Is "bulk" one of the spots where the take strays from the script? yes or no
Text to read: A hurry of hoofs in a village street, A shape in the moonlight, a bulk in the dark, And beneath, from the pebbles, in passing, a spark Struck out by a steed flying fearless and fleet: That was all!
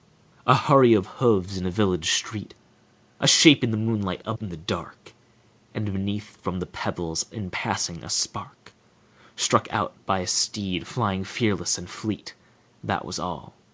yes